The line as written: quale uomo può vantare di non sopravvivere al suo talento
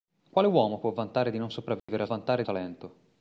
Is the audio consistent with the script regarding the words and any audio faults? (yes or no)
no